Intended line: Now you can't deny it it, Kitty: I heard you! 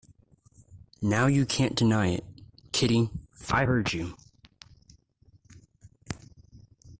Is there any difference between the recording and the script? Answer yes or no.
yes